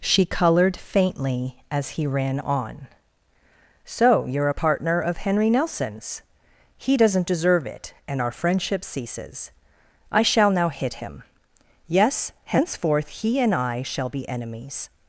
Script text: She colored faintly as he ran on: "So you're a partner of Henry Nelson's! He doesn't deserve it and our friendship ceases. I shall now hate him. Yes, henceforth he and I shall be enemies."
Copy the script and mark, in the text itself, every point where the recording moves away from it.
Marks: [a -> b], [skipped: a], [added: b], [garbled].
She colored faintly as he ran on: "So you're a partner of Henry Nelson's! He doesn't deserve it and our friendship ceases. I shall now [hate -> hit] him. Yes, henceforth he and I shall be enemies."